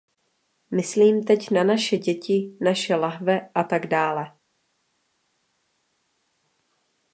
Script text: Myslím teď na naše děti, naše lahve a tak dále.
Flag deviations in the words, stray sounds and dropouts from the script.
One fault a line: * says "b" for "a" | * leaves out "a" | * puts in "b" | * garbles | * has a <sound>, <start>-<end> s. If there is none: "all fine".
all fine